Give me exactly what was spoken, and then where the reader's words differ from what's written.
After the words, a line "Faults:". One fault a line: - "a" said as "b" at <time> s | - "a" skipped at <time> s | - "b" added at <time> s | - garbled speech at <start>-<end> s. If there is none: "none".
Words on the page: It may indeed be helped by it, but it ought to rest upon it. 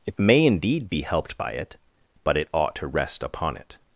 It may indeed be helped by it, but it ought to rest upon it.
Faults:
none